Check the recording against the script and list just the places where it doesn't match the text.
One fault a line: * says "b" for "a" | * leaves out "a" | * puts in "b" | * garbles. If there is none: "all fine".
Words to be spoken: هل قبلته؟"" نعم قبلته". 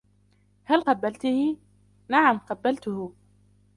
all fine